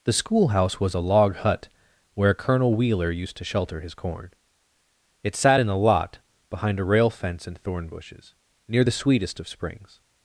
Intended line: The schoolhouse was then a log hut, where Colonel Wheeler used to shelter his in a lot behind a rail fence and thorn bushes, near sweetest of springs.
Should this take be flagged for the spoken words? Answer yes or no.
yes